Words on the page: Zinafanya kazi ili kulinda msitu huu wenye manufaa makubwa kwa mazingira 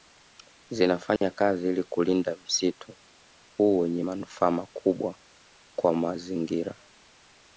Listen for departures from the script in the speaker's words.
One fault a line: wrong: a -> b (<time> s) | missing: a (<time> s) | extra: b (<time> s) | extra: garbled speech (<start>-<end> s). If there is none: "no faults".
no faults